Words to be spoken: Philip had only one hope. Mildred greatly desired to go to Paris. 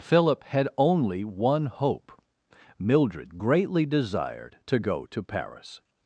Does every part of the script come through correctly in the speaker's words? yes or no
yes